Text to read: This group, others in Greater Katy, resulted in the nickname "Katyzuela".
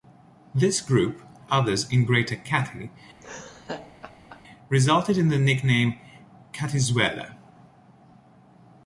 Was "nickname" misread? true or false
false